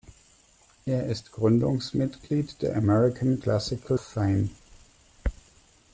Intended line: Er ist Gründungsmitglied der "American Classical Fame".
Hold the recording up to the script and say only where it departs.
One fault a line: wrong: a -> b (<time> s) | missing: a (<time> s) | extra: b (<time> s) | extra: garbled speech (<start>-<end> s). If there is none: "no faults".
no faults